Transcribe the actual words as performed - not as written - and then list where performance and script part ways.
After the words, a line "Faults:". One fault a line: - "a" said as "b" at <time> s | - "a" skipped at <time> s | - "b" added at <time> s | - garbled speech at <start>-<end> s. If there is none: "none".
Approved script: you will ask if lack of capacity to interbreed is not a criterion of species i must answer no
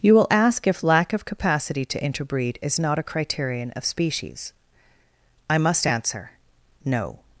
you will ask if lack of capacity to interbreed is not a criterion of species i must answer no
Faults:
none